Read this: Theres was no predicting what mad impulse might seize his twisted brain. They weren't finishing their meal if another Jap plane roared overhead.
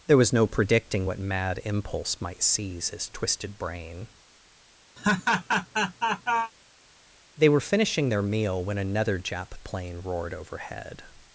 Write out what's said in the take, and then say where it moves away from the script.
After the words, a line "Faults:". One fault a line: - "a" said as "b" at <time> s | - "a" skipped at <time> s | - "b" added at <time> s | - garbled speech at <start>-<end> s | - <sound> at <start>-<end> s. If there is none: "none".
There was no predicting what mad impulse might seize his twisted brain. They were finishing their meal when another Jap plane roared overhead.
Faults:
- "Theres" said as "There" at 0.1 s
- laugh at 5.0-6.5 s
- "weren't" said as "were" at 7.5 s
- "if" said as "when" at 8.6 s